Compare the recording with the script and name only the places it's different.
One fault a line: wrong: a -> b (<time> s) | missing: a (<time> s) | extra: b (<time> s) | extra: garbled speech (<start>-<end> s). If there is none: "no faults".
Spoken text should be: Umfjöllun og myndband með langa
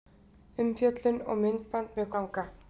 no faults